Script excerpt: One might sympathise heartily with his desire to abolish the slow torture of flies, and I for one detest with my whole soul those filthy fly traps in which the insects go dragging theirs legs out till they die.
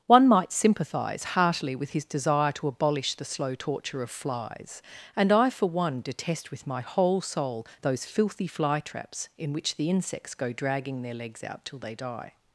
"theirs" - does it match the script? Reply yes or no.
no